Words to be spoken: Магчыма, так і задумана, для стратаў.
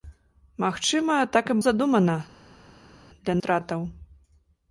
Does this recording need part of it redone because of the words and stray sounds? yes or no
no